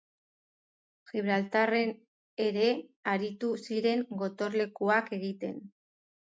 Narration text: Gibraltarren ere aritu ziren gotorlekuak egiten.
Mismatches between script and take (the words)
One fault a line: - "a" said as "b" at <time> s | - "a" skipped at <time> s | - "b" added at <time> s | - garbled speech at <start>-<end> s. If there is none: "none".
none